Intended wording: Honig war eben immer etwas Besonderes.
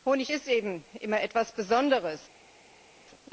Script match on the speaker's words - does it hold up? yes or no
no